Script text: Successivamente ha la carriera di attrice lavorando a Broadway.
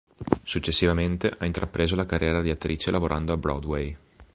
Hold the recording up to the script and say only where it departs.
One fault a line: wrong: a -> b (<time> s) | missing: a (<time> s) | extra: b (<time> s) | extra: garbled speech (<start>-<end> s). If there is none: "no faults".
extra: intrapreso (1.4 s)